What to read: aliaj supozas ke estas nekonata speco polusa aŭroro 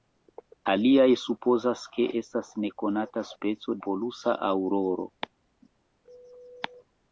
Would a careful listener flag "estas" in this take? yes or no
no